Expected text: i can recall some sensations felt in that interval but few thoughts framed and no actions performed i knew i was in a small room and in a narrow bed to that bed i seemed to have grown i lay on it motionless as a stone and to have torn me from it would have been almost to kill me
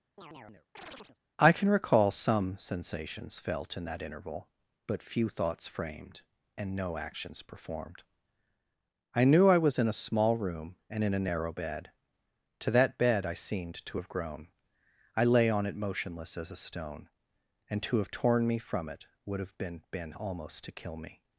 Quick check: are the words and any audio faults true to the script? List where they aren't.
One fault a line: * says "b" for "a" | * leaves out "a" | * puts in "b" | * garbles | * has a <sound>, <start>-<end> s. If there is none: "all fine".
* has a chirp, 0.2-1.2 s
* puts in "been"